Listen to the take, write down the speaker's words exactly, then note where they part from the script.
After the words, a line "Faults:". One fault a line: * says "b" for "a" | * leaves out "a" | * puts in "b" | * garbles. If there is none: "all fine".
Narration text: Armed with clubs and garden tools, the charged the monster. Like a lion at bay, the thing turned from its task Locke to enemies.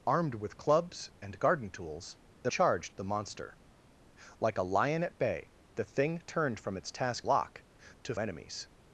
Armed with clubs and garden tools, the charged the monster. Like a lion at bay, the thing turned from its task Locke to enemies.
Faults:
all fine